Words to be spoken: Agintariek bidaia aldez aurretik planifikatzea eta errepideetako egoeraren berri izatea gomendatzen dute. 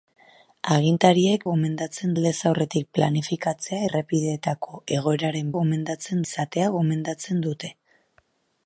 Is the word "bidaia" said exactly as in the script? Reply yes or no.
no